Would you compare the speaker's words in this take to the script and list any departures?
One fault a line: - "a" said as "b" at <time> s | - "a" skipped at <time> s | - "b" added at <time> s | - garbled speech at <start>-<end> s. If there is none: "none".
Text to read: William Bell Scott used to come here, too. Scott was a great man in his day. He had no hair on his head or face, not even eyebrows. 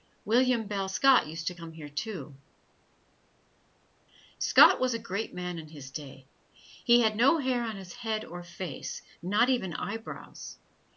none